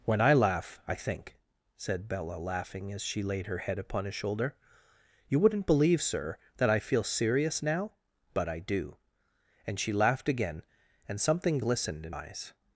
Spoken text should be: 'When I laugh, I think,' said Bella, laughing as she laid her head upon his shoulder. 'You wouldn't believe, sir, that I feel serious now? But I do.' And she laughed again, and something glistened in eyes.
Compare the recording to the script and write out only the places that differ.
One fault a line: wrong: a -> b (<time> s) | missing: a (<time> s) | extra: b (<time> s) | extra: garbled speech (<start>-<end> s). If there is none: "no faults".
no faults